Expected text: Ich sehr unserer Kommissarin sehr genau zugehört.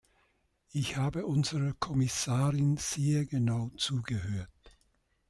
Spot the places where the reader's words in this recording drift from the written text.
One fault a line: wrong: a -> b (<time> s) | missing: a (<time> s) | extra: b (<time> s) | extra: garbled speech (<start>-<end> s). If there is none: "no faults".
wrong: sehr -> habe (1.0 s)